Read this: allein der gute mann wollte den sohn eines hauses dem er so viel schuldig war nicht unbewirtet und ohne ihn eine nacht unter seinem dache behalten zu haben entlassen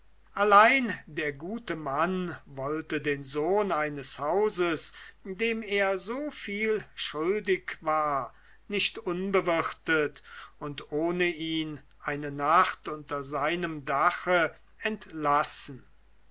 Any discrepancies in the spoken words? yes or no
yes